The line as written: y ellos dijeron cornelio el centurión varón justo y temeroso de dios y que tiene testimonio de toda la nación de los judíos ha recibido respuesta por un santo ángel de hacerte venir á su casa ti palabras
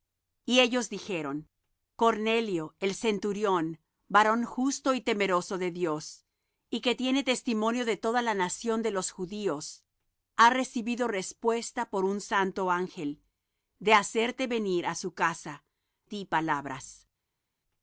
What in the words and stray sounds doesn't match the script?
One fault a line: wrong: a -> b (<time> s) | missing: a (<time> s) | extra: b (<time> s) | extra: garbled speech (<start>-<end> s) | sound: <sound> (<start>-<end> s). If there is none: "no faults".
no faults